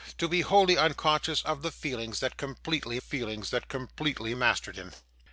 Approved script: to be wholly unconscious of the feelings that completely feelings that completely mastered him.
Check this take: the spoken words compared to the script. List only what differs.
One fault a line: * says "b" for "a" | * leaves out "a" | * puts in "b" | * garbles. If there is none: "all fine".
all fine